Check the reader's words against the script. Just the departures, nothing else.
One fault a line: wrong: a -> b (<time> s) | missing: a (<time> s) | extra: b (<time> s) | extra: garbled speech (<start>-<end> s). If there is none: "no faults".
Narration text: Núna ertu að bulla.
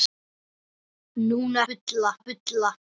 wrong: ertu -> bulla (1.7 s)